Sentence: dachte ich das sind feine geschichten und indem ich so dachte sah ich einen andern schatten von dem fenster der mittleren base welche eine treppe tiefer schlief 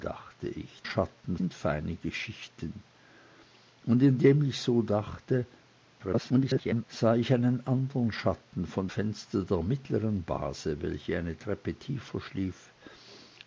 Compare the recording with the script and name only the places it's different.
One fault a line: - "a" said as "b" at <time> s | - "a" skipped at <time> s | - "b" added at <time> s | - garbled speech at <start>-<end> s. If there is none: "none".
- "das" said as "schatten" at 0.8 s
- garbled speech at 6.0-6.8 s
- "dem" skipped at 8.9 s